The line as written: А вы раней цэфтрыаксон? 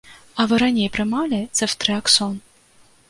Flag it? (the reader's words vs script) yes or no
yes